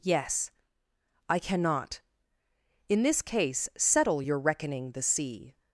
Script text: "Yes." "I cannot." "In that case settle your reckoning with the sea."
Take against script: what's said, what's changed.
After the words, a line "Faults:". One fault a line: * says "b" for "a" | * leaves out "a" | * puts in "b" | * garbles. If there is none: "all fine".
"Yes." "I cannot." "In this case settle your reckoning the sea."
Faults:
* says "this" for "that"
* leaves out "with"